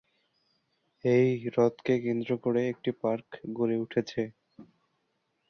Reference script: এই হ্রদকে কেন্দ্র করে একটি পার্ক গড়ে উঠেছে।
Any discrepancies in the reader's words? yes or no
no